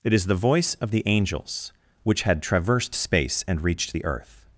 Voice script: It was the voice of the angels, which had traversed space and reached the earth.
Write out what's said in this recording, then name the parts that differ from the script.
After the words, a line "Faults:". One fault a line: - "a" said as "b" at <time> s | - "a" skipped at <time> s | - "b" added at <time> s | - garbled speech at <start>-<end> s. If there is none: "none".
It is the voice of the angels, which had traversed space and reached the earth.
Faults:
- "was" said as "is" at 0.1 s